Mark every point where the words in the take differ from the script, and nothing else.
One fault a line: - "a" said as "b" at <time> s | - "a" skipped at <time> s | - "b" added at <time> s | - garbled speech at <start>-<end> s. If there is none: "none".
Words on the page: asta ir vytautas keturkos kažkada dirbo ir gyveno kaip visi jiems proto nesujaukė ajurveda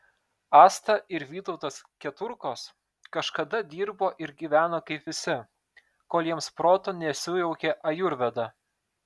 - "kol" added at 6.2 s